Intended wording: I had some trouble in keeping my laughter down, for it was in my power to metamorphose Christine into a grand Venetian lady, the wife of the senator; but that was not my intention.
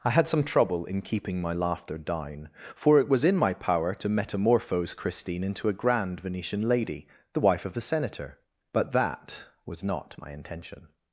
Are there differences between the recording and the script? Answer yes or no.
no